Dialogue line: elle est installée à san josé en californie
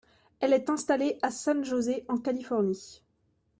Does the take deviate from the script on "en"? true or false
false